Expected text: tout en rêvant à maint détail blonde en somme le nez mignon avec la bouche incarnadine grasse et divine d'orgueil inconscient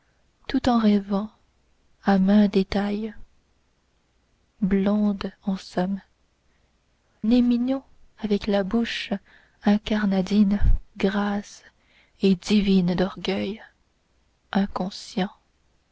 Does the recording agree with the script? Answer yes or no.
no